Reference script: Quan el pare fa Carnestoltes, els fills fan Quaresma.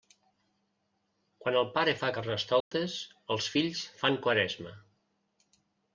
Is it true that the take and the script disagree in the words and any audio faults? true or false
true